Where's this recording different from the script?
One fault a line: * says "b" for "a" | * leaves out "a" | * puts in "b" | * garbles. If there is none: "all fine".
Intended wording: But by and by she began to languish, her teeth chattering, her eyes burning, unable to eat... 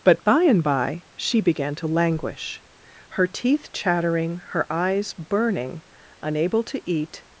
all fine